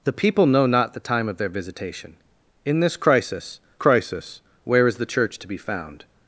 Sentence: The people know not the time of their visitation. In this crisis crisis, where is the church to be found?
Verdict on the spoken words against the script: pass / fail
pass